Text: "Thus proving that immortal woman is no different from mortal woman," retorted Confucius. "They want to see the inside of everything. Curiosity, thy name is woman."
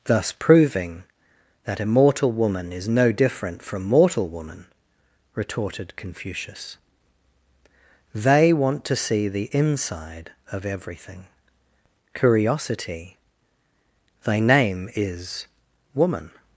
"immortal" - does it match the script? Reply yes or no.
yes